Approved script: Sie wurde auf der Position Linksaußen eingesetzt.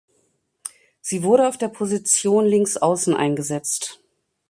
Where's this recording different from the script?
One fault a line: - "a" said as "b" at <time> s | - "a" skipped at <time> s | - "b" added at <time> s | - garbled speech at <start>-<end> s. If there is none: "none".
none